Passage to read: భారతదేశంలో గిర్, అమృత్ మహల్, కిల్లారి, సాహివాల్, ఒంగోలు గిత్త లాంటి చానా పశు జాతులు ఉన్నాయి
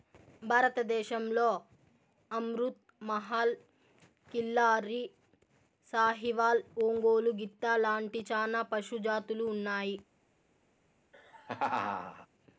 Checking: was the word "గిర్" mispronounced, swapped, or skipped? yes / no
yes